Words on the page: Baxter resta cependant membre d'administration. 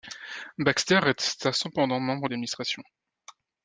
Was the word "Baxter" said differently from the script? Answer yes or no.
no